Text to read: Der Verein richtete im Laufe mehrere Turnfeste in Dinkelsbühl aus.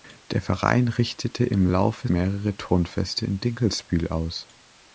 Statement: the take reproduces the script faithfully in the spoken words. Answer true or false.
true